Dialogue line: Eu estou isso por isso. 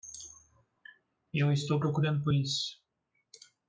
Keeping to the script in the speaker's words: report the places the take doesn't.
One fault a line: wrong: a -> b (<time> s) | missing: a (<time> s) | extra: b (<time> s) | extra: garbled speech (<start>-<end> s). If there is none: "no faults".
wrong: isso -> procurando (1.8 s)